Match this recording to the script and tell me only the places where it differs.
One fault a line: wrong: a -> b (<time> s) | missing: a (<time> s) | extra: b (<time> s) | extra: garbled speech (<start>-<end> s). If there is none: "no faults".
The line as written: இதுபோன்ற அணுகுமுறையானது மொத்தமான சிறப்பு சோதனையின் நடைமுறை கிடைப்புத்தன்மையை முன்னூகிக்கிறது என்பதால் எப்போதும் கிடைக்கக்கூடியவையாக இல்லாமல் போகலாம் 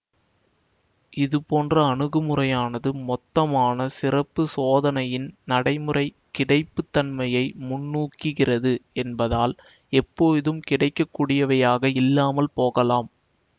no faults